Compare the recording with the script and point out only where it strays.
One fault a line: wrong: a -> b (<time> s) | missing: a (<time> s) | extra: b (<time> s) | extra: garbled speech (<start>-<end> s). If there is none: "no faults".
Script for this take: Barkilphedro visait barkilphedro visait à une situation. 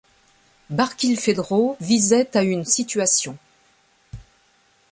missing: barkilphedro visait (2.4 s)